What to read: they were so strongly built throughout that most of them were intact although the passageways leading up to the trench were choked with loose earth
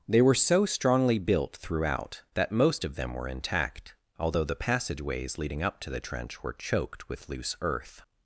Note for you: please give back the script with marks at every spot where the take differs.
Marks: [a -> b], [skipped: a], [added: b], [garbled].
they were so strongly built throughout that most of them were intact although the passageways leading up to the trench were choked with loose earth